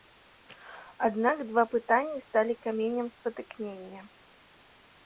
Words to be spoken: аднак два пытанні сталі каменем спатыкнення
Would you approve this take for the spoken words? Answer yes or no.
yes